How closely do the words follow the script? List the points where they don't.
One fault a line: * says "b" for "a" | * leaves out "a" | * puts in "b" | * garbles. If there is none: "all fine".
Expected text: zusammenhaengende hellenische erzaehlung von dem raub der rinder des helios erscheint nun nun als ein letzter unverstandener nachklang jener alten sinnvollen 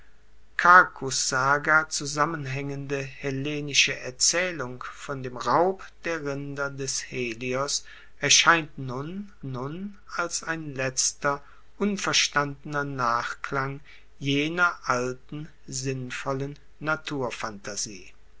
all fine